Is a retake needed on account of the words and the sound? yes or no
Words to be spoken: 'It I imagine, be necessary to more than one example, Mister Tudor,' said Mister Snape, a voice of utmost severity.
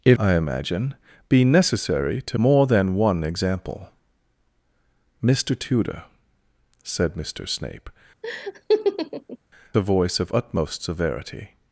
yes